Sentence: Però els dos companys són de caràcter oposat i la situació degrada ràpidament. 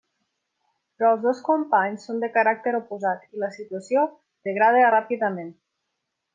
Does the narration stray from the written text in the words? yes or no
no